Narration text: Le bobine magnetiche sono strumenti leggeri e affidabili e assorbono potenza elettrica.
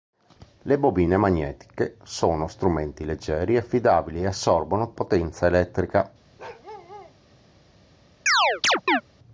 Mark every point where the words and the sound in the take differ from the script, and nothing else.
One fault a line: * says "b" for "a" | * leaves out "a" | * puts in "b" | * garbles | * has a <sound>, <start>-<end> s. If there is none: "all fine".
* has a bark, 6.4-7.2 s
* has a chirp, 8.3-9.0 s